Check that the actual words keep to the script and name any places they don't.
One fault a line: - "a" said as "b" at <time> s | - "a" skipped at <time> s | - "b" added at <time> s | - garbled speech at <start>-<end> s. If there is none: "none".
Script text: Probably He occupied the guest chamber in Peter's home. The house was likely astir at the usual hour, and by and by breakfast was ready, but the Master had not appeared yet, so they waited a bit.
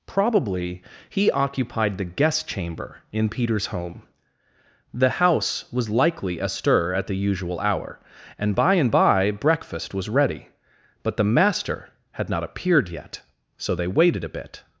none